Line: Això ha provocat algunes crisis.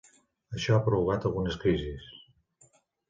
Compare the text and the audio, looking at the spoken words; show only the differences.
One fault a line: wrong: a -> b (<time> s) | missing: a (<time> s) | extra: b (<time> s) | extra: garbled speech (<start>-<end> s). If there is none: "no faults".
no faults